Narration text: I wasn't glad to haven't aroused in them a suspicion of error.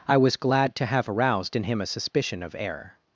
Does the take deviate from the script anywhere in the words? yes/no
yes